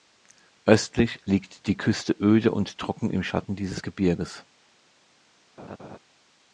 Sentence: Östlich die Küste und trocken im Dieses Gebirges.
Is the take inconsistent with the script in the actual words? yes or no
yes